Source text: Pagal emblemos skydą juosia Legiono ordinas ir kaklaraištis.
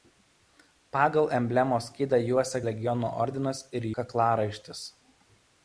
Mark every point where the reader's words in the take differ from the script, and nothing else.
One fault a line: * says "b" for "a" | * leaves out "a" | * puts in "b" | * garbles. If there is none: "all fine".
all fine